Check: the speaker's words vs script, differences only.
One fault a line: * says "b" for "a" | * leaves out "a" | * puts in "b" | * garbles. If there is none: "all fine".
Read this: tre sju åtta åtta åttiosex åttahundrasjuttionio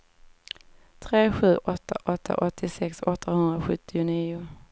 all fine